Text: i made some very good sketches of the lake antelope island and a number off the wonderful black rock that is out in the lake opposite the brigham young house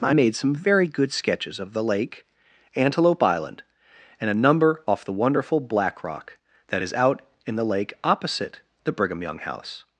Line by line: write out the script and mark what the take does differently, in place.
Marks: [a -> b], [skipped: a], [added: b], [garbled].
i made some very good sketches of the lake antelope island and a number off the wonderful black rock that is out in the lake opposite the brigham young house